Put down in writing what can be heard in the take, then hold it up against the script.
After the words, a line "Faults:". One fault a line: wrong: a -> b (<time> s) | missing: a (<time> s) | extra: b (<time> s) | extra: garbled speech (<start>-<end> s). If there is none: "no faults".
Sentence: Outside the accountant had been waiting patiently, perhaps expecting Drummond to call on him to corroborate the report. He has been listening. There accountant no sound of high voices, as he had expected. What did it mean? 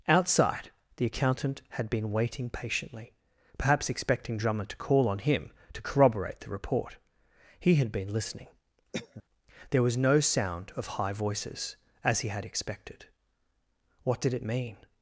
Outside the accountant had been waiting patiently, perhaps expecting Drummond to call on him to corroborate the report. He had been listening. There was no sound of high voices, as he had expected. What did it mean?
Faults:
wrong: has -> had (7.8 s)
wrong: accountant -> was (9.8 s)